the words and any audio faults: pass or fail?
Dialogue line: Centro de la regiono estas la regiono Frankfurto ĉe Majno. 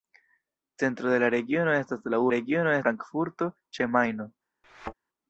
fail